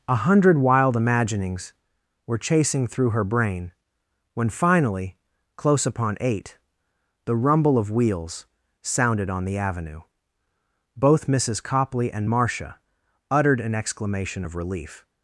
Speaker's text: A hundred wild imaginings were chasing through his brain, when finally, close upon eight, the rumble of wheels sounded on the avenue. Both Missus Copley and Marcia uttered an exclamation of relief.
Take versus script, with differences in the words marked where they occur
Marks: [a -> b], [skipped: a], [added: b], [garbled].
A hundred wild imaginings were chasing through [his -> her] brain, when finally, close upon eight, the rumble of wheels sounded on the avenue. Both Missus Copley and Marcia uttered an exclamation of relief.